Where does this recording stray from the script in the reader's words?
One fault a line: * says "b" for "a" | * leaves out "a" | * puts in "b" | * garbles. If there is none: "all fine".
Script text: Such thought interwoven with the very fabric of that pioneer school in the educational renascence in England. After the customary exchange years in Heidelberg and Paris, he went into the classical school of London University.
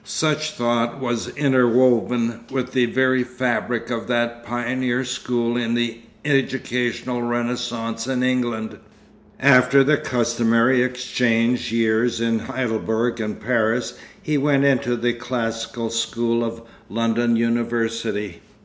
* puts in "was"